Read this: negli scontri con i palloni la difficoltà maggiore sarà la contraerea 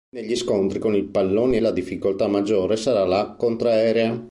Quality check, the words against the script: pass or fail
pass